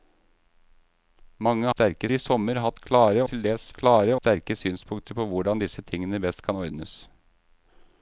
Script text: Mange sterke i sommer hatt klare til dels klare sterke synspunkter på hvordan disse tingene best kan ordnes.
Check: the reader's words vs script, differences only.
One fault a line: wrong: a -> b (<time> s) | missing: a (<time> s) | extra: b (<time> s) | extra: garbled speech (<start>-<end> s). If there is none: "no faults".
no faults